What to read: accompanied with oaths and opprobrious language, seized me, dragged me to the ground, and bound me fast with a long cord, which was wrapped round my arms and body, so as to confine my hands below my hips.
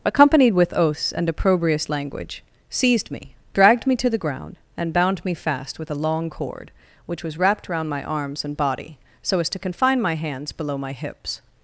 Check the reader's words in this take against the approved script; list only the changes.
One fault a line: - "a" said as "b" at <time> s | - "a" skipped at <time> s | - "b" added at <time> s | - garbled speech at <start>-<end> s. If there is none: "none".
none